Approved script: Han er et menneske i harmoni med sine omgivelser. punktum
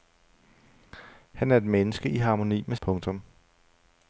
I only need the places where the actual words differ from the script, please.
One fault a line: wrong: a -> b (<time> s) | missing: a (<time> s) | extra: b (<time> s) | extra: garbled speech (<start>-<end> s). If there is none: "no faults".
missing: sine omgivelser (2.8 s)